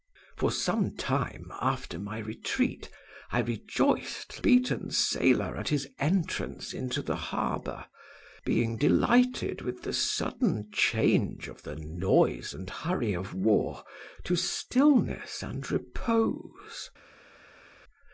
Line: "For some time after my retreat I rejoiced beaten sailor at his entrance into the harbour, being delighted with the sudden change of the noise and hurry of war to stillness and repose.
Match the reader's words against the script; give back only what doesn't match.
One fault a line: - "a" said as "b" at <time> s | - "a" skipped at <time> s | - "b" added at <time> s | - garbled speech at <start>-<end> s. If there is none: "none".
none